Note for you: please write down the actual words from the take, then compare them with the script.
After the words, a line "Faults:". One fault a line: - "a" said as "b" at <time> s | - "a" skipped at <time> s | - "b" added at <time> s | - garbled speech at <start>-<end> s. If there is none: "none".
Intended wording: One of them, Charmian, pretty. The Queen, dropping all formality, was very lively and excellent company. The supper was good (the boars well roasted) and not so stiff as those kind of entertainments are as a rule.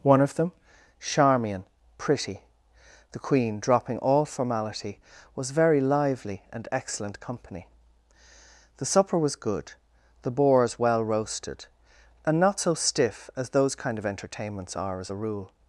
One of them, Charmian, pretty. The Queen, dropping all formality, was very lively and excellent company. The supper was good (the boars well roasted) and not so stiff as those kind of entertainments are as a rule.
Faults:
none